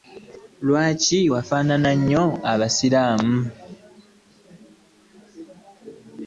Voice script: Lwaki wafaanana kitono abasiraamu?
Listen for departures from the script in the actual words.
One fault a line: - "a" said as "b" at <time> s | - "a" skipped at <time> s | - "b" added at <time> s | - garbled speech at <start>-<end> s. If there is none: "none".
- "kitono" said as "nnyo" at 2.0 s